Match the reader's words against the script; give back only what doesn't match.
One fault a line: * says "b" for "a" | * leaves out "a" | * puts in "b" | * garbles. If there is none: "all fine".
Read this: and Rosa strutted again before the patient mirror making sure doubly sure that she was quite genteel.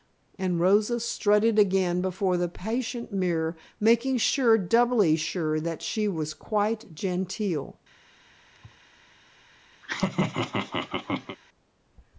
all fine